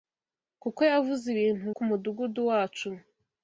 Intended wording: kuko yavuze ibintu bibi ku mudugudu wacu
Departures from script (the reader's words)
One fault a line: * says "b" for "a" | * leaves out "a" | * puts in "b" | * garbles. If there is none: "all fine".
* leaves out "bibi"